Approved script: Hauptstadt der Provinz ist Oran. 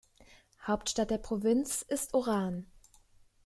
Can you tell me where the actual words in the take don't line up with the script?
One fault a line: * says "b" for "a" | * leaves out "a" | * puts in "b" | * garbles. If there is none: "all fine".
all fine